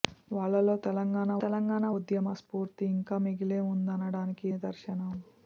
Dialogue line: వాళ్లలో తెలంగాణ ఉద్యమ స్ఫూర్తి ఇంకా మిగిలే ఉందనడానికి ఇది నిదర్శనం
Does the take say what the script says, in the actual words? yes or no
no